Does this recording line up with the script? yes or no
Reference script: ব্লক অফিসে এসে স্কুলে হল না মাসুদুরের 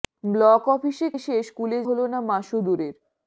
yes